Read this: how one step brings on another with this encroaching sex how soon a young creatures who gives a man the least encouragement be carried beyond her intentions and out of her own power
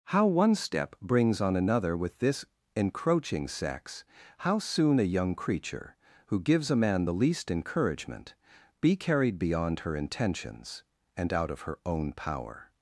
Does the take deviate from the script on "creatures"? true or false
true